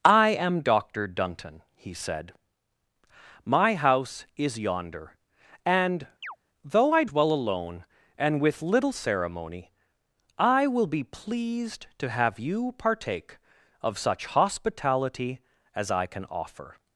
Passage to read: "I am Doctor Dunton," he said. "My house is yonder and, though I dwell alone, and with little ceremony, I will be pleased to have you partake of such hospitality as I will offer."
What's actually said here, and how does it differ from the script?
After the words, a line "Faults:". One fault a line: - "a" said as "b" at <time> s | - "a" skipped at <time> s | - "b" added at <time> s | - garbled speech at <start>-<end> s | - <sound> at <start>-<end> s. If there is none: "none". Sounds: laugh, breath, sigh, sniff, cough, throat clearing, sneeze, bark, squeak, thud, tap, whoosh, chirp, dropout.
"I am Doctor Dunton," he said. "My house is yonder and, though I dwell alone, and with little ceremony, I will be pleased to have you partake of such hospitality as I can offer."
Faults:
- chirp at 6.2-6.4 s
- "will" said as "can" at 16.1 s